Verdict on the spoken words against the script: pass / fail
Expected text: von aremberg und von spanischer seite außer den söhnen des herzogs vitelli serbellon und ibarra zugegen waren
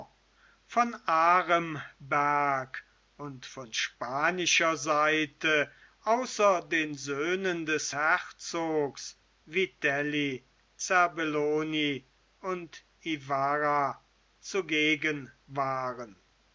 pass